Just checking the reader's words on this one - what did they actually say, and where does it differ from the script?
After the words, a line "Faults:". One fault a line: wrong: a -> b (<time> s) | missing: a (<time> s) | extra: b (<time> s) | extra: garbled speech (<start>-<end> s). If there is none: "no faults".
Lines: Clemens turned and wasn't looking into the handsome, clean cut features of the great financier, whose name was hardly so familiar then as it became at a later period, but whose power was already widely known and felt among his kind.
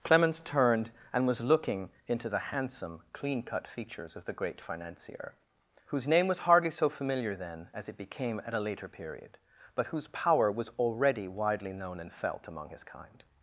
Clemens turned and was looking into the handsome, clean cut features of the great financier, whose name was hardly so familiar then as it became at a later period, but whose power was already widely known and felt among his kind.
Faults:
wrong: wasn't -> was (1.3 s)